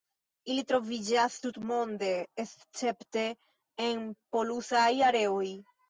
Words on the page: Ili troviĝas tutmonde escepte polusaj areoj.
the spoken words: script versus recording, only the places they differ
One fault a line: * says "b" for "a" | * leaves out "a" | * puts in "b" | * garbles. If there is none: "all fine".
* puts in "en"